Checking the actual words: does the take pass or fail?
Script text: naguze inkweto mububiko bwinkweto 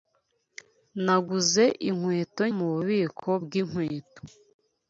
pass